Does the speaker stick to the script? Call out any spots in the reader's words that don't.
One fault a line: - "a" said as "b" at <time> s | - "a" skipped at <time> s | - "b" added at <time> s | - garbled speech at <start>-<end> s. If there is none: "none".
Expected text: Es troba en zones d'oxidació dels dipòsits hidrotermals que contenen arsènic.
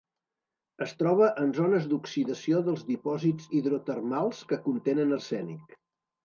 none